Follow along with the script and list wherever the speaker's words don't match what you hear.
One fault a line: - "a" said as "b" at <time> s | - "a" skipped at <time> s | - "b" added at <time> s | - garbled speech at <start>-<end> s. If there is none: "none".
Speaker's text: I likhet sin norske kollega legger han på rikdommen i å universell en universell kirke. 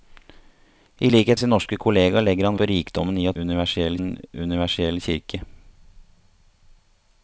none